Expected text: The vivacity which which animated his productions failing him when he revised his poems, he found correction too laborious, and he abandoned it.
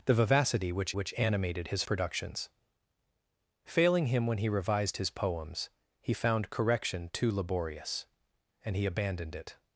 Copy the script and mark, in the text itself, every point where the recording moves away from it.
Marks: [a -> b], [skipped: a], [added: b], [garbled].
The vivacity which which animated his productions failing him when he revised his poems, he found correction too laborious, and he abandoned it.